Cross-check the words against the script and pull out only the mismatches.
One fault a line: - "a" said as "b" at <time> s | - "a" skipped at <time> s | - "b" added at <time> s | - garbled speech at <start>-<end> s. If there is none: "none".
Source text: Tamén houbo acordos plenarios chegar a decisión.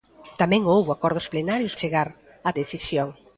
none